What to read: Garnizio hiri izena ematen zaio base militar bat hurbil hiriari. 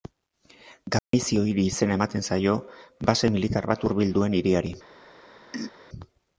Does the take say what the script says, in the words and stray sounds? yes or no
no